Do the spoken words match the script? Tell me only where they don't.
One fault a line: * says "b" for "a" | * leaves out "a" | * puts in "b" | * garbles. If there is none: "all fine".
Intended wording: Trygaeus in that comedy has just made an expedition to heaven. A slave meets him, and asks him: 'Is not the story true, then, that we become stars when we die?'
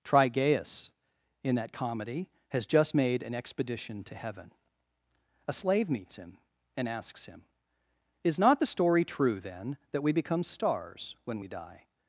all fine